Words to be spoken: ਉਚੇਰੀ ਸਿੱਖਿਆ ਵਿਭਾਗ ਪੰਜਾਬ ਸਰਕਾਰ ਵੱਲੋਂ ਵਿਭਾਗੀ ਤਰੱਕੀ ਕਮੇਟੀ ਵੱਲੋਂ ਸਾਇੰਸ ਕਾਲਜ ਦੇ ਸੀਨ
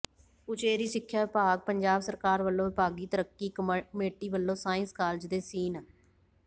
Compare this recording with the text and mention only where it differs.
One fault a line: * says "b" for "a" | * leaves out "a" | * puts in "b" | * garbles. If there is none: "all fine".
all fine